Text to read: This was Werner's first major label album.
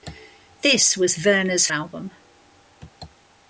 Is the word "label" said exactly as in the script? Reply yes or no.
no